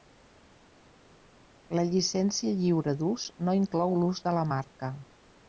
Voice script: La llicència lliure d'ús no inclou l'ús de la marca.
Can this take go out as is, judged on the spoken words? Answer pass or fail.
pass